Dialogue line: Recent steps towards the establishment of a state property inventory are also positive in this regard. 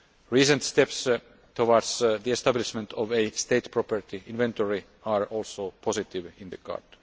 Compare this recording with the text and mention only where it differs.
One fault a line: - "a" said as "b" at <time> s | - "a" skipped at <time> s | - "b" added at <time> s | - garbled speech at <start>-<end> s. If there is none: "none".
- "this" skipped at 6.5 s